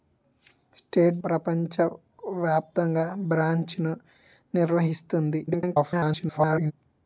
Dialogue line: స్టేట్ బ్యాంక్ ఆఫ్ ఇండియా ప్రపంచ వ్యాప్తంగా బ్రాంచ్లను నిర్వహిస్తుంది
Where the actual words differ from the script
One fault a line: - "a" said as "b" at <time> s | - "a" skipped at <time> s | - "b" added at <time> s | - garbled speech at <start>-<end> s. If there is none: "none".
- "బ్యాంక్ ఆఫ్ ఇండియా" skipped at 1.2 s
- garbled speech at 5.5-6.7 s